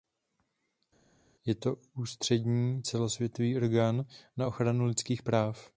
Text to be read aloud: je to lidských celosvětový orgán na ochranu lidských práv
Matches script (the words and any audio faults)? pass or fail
fail